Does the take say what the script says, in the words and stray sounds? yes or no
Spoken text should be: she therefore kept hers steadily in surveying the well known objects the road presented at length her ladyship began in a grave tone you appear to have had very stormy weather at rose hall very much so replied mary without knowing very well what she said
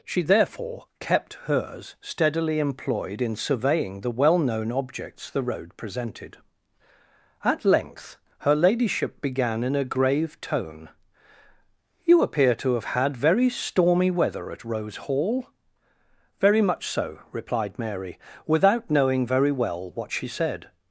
no